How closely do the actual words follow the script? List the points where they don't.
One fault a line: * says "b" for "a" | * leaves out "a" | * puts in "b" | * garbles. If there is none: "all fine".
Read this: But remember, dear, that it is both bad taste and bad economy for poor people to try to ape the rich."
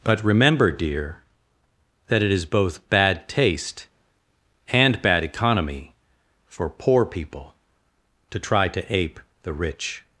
all fine